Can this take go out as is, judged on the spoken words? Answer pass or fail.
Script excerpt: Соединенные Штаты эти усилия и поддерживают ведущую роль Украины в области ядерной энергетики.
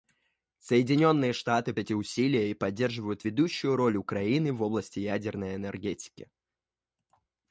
pass